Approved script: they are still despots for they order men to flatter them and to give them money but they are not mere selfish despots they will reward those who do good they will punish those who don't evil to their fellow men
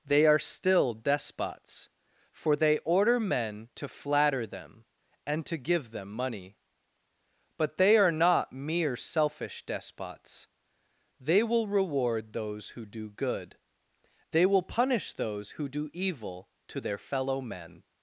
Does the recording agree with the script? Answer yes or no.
no